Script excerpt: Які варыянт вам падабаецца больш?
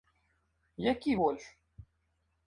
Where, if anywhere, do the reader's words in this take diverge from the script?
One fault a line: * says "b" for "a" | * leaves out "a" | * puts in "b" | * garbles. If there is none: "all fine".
* leaves out "варыянт вам падабаецца"